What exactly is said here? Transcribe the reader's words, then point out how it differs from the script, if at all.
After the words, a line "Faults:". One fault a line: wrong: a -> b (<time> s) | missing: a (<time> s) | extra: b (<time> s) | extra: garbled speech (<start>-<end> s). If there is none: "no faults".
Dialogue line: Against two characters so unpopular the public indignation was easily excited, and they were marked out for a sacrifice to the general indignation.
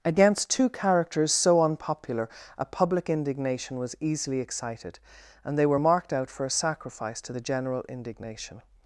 Against two characters so unpopular a public indignation was easily excited, and they were marked out for a sacrifice to the general indignation.
Faults:
wrong: the -> a (2.6 s)